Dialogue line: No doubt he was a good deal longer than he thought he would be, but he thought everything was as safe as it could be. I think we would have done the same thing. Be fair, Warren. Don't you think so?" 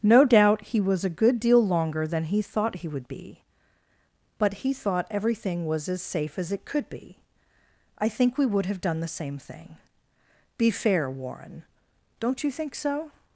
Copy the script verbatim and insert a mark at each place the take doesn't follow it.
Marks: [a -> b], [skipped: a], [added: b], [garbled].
No doubt he was a good deal longer than he thought he would be, but he thought everything was as safe as it could be. I think we would have done the same thing. Be fair, Warren. Don't you think so?"